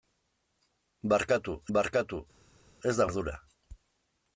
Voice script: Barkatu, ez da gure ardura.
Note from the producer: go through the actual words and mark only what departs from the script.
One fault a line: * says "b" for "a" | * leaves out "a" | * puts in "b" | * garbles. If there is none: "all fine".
* puts in "barkatu"
* leaves out "gure"